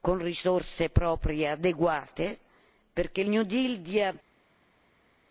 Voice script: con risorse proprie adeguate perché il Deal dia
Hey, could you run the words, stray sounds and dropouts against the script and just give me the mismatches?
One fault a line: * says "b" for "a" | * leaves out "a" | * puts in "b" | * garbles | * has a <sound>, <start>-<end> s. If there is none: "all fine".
* puts in "New"